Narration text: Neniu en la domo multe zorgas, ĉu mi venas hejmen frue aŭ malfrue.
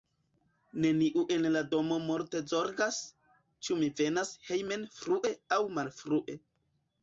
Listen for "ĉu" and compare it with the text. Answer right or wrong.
right